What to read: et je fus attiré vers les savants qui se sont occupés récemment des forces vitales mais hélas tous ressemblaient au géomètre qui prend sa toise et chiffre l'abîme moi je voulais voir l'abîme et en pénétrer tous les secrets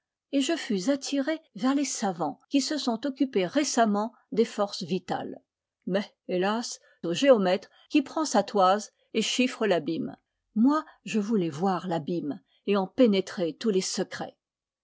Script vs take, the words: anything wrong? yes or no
yes